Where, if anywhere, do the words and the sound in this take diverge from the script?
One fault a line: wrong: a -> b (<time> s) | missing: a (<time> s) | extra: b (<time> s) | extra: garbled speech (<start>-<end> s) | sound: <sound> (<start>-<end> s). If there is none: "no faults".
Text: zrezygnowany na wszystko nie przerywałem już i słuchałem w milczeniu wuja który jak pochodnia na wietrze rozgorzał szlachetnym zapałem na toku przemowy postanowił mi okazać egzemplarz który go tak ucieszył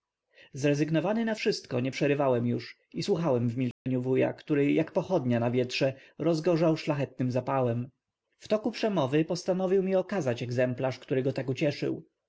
sound: dropout (3.7-3.9 s)
wrong: na -> w (8.4 s)